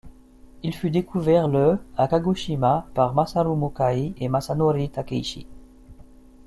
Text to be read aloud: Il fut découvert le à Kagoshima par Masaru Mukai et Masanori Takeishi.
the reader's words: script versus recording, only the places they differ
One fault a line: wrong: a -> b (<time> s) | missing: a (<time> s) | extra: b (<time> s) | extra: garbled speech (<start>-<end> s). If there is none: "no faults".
no faults